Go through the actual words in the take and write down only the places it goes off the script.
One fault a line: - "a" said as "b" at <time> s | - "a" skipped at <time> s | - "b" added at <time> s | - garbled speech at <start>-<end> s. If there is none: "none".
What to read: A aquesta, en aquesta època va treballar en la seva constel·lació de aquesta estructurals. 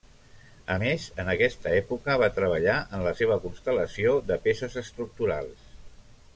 - "aquesta" said as "més" at 0.8 s
- "aquesta" said as "peces" at 4.5 s